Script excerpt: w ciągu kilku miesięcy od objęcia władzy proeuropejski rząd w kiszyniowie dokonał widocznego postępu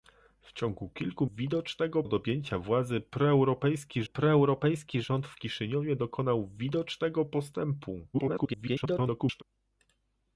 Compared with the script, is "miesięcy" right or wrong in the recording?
wrong